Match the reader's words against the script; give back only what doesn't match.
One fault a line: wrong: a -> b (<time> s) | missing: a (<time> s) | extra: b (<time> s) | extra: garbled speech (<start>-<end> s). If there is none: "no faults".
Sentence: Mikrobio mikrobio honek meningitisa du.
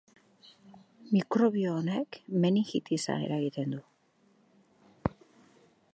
missing: mikrobio (1.8 s)
extra: eragiten (3.3 s)